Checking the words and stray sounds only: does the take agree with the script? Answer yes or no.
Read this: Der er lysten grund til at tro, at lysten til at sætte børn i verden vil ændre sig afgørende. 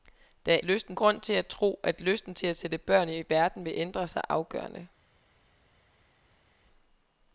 yes